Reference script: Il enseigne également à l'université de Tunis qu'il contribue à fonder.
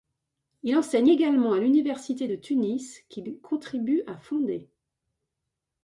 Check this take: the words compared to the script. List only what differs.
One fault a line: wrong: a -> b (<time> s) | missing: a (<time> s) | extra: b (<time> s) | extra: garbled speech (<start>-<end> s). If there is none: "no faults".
no faults